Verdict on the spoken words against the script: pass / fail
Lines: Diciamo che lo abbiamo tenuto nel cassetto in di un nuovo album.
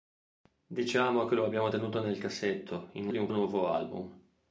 pass